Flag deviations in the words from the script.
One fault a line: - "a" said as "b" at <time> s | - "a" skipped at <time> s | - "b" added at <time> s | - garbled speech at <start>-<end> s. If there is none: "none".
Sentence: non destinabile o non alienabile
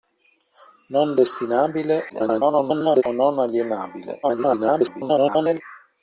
- garbled speech at 2.1-3.0 s
- garbled speech at 4.2-5.6 s